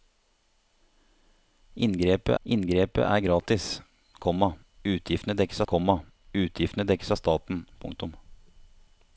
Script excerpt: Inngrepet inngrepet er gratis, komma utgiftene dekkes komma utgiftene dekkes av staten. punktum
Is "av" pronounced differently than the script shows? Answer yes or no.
no